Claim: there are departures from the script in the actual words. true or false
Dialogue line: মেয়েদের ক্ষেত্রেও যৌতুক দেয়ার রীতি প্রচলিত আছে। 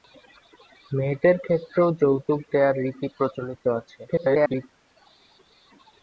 true